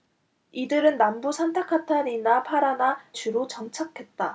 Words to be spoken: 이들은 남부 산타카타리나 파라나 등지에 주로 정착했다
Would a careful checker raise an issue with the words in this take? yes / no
yes